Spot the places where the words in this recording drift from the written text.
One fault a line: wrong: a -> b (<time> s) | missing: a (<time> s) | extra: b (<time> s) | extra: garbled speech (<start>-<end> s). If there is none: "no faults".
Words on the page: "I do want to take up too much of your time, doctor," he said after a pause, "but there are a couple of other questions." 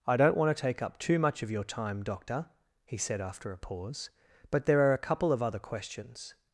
wrong: do -> don't (0.2 s)